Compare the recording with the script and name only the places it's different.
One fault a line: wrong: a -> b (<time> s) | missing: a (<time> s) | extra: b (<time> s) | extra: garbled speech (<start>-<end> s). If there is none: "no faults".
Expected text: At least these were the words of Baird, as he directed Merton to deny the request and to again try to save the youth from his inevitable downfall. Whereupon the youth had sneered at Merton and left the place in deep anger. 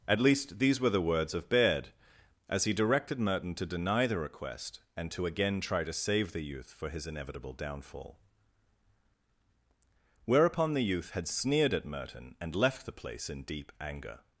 wrong: from -> for (6.7 s)